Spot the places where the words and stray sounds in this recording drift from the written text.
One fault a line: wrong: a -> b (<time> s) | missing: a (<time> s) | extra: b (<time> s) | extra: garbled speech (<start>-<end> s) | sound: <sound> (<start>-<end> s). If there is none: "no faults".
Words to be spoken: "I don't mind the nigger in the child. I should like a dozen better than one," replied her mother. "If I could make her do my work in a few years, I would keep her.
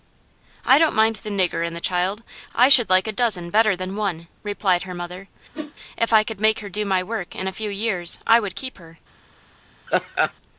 sound: whoosh (5.5-5.7 s)
sound: laugh (9.9-10.3 s)